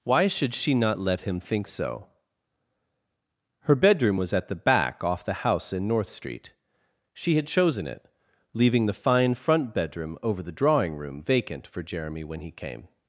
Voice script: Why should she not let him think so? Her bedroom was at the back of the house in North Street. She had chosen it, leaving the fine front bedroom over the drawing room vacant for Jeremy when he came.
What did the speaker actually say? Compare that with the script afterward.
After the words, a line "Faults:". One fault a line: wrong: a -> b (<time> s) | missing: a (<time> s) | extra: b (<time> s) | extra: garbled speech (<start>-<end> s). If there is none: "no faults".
Why should she not let him think so? Her bedroom was at the back off the house in North Street. She had chosen it, leaving the fine front bedroom over the drawing room vacant for Jeremy when he came.
Faults:
wrong: of -> off (5.0 s)